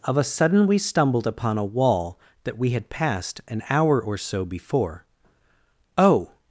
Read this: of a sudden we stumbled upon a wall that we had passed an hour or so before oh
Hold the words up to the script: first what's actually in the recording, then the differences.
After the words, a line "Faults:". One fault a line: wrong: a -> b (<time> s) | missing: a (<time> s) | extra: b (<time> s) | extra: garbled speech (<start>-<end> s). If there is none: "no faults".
of a sudden we stumbled upon a wall that we had passed an hour or so before oh
Faults:
no faults